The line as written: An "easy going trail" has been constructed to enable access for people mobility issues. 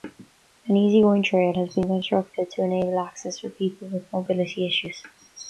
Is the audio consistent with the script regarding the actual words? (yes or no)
no